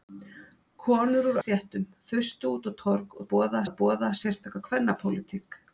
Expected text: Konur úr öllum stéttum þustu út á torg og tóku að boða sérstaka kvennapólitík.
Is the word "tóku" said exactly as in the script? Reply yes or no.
no